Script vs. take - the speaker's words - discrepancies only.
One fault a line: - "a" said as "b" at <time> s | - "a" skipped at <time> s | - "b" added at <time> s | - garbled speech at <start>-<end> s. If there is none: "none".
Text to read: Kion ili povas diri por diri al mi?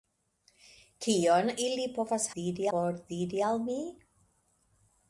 none